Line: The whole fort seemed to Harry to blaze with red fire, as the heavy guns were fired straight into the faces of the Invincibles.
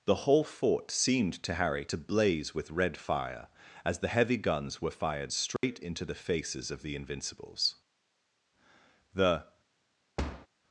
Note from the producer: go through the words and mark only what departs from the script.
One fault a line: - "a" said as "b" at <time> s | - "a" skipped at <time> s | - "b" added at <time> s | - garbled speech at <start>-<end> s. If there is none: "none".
- "The" added at 9.1 s